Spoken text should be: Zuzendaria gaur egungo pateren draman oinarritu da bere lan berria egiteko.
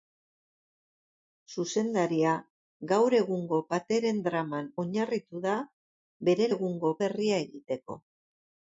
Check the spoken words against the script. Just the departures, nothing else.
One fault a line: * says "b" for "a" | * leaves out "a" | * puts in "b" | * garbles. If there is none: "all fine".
* says "egungo" for "lan"